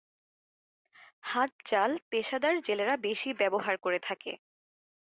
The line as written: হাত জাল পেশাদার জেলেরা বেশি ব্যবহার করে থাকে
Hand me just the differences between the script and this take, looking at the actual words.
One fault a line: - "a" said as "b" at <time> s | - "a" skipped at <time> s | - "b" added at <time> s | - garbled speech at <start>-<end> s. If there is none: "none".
none